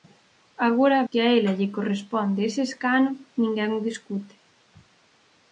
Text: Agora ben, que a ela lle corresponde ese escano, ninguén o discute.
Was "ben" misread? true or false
true